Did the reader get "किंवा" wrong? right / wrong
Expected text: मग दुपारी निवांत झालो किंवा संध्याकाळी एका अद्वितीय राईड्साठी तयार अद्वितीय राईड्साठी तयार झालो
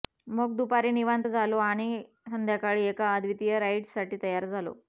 wrong